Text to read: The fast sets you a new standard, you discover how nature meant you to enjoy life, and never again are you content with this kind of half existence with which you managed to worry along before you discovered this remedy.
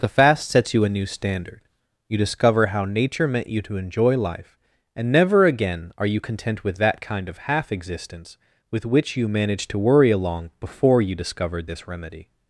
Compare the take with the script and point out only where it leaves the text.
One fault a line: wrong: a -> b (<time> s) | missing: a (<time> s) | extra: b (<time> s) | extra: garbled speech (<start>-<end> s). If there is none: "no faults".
wrong: this -> that (6.8 s)